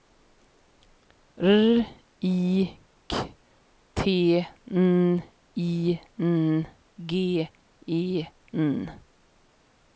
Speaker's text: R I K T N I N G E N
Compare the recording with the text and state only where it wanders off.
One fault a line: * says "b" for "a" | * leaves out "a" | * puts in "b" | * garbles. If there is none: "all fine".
all fine